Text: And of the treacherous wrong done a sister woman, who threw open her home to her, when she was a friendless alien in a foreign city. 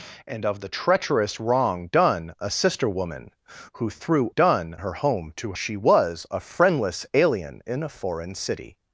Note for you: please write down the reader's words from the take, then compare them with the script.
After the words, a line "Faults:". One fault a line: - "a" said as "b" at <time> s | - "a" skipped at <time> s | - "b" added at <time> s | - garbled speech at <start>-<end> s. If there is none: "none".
And of the treacherous wrong done a sister woman, who threw done her home to she was a friendless alien in a foreign city.
Faults:
- "open" said as "done" at 4.3 s
- "her when" skipped at 5.5 s